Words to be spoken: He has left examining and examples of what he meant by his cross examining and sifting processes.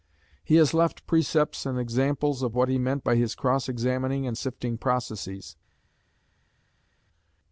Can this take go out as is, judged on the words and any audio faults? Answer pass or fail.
fail